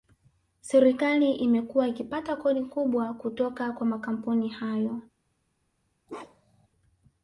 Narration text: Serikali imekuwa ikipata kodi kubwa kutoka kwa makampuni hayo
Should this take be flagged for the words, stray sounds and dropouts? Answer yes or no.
yes